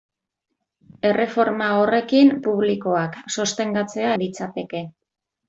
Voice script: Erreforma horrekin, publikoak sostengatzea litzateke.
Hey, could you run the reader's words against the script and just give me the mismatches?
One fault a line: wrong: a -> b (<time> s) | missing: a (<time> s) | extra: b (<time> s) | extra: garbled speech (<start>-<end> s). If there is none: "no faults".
no faults